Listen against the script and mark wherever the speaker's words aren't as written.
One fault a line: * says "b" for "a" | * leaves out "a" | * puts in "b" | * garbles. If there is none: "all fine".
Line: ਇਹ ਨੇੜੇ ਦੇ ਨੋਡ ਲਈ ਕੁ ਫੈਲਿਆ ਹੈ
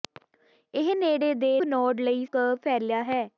all fine